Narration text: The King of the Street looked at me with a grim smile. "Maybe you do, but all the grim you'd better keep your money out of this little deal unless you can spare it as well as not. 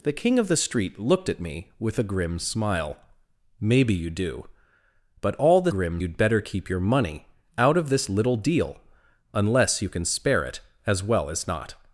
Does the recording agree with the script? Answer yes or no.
yes